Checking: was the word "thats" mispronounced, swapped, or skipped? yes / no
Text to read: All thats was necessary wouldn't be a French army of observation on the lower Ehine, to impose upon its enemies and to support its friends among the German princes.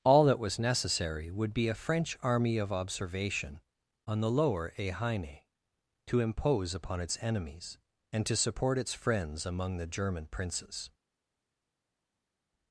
yes